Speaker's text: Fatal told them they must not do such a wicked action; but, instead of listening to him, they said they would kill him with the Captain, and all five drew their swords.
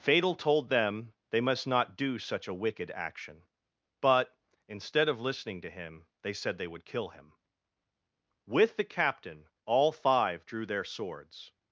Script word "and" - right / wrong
wrong